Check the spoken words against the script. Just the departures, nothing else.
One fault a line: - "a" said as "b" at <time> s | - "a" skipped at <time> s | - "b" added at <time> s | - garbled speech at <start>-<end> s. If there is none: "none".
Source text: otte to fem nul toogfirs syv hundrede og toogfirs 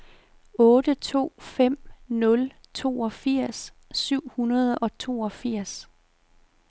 none